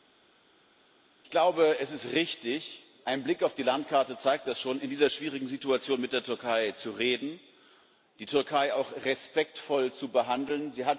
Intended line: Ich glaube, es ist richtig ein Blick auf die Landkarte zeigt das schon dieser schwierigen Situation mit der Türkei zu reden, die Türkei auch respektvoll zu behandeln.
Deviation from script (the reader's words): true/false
true